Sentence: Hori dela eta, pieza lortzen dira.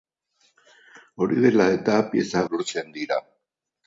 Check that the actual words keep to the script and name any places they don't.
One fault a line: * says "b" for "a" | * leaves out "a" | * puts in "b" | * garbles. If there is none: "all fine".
all fine